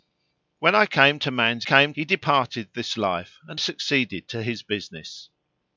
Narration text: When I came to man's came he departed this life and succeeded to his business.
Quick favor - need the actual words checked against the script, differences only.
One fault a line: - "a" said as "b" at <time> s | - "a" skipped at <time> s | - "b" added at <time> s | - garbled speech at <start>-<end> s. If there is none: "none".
none